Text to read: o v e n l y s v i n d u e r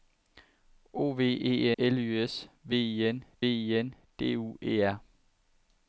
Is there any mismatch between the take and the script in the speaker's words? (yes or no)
yes